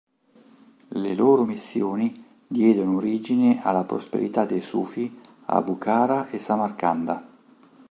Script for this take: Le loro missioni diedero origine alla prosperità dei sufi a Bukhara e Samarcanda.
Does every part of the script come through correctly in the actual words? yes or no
yes